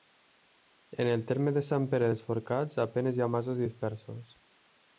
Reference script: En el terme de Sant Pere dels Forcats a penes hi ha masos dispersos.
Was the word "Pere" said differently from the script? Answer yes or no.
no